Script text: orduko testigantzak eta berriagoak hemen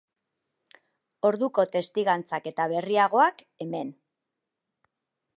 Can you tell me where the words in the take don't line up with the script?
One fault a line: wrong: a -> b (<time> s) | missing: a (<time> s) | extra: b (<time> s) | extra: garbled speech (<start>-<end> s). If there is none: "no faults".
no faults